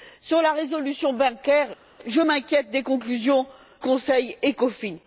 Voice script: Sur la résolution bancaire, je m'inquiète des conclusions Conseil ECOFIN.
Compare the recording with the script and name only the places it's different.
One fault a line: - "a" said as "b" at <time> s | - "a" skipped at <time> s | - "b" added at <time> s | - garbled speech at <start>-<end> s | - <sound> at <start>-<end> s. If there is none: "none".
none